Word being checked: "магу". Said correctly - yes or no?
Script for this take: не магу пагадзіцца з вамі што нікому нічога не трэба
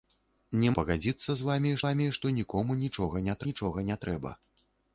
no